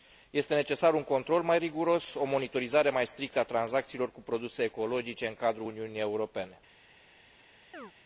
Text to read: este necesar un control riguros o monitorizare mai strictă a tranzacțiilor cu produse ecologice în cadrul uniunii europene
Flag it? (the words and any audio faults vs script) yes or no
yes